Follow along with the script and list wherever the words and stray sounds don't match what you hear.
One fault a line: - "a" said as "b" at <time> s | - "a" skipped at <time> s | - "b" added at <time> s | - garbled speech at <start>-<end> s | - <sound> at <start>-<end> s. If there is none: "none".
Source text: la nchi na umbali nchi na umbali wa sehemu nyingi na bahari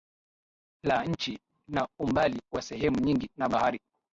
- "nchi na umbali" skipped at 2.4 s